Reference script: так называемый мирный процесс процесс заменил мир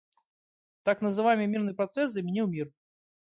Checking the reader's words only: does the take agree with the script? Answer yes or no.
no